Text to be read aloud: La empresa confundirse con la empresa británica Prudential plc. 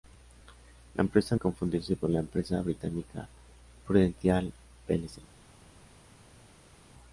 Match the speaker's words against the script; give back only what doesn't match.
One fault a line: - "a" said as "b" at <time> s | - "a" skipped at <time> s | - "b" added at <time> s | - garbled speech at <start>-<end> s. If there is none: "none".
none